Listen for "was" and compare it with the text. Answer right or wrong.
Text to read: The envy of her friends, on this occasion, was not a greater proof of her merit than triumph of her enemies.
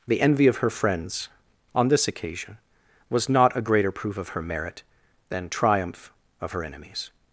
right